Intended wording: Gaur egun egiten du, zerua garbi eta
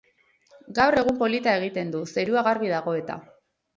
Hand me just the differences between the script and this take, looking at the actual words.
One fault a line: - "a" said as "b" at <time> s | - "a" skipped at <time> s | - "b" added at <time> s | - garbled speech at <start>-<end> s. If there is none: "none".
- "polita" added at 1.2 s
- "dago" added at 2.8 s